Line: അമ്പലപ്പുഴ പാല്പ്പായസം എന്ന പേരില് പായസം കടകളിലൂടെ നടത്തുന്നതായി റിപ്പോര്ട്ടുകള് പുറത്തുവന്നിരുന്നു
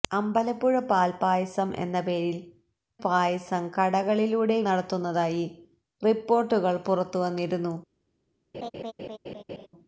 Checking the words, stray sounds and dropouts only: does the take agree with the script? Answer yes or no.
no